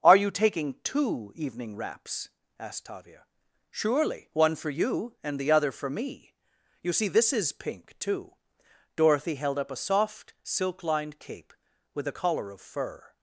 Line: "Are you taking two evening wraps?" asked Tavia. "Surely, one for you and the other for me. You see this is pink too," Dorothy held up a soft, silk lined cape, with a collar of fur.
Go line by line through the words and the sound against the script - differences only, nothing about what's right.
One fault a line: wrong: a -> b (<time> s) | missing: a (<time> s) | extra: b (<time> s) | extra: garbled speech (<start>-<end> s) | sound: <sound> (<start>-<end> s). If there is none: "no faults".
no faults